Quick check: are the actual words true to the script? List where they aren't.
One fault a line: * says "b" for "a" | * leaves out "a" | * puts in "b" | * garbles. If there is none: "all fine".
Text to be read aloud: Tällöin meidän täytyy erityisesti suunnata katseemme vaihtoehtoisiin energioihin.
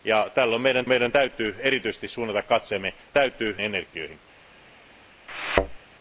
* puts in "meidän"
* says "täytyy" for "vaihtoehtoisiin"